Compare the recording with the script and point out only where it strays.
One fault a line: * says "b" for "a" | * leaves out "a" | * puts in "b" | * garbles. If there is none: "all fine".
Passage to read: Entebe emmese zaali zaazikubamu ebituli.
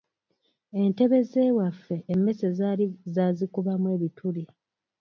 * puts in "z'ewaffe"